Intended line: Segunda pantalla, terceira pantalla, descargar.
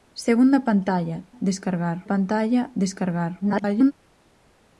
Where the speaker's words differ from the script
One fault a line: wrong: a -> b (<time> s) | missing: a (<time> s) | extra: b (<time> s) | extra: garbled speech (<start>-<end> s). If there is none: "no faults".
wrong: terceira -> descargar (1.4 s)
extra: garbled speech (3.4-3.9 s)